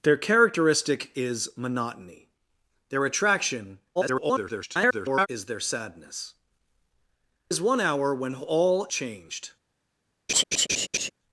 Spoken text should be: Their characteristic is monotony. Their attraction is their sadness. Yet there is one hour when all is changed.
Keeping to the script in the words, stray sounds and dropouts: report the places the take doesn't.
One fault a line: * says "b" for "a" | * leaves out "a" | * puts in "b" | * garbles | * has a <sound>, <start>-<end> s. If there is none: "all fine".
* garbles
* leaves out "Yet there"
* leaves out "is"
* has a laugh, 10.3-11.1 s